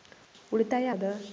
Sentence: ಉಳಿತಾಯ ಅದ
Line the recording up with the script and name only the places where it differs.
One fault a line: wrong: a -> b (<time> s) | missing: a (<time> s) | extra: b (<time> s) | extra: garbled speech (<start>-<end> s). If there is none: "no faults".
no faults